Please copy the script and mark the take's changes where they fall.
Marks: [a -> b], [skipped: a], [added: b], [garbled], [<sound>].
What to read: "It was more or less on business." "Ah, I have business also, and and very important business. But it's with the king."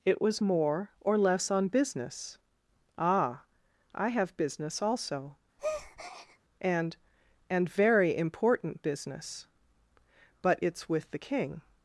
"It was more or less on business." "Ah, I have business also, [breath] and and very important business. But it's with the king."